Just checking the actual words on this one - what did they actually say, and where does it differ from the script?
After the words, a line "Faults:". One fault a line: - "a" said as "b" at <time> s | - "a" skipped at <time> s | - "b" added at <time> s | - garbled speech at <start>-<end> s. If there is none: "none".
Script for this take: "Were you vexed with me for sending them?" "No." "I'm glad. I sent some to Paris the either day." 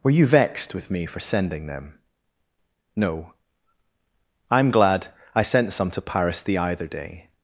"Were you vexed with me for sending them?" "No." "I'm glad. I sent some to Paris the either day."
Faults:
none